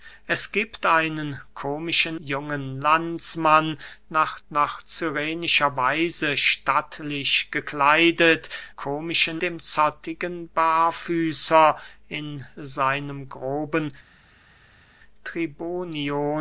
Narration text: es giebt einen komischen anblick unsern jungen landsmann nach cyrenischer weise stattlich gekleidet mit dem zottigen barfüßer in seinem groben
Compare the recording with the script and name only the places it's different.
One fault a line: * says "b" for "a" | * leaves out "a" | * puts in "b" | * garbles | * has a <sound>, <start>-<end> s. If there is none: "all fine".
* leaves out "anblick unsern"
* puts in "nach"
* says "komischen" for "mit"